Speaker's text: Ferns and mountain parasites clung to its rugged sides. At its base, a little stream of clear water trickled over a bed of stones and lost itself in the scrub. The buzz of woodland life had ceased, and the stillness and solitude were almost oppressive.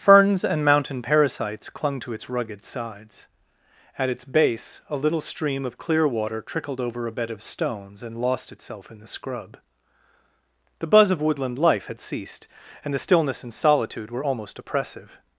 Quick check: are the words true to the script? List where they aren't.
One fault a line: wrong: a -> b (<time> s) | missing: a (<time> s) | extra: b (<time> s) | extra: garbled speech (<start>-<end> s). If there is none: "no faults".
no faults